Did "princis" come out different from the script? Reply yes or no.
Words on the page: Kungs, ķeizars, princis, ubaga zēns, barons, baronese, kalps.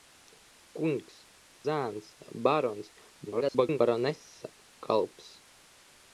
yes